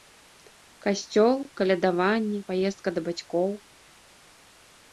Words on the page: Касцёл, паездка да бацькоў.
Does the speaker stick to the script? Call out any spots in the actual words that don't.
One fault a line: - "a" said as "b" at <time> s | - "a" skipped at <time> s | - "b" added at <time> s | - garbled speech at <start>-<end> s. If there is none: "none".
- "калядаванне" added at 1.6 s